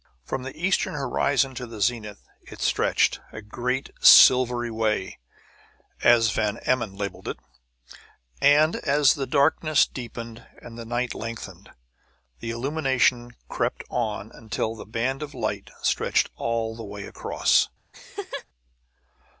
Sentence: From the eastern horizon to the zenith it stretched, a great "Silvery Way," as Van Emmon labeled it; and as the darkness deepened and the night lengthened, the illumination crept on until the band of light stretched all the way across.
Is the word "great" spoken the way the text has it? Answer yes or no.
yes